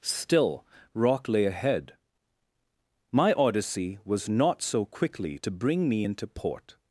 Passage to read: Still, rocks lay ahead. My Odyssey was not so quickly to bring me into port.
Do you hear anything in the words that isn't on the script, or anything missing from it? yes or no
yes